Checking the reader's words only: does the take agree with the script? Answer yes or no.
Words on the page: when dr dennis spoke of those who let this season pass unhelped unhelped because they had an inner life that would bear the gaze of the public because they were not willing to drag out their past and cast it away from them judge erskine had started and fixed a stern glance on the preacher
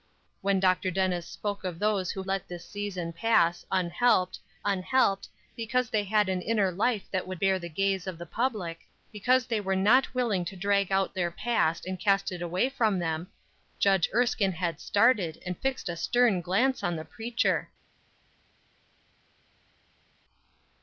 yes